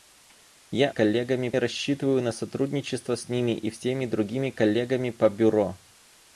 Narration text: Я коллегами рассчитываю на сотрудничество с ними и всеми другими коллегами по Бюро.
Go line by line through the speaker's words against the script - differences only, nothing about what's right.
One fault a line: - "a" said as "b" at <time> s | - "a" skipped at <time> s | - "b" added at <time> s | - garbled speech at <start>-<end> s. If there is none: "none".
none